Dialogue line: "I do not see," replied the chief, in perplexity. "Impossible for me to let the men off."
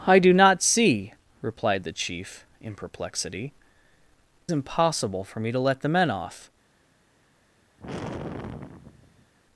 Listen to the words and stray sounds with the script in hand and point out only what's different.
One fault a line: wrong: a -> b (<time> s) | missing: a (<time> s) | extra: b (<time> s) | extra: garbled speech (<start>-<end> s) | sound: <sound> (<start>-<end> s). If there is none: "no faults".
sound: sigh (7.8-9.3 s)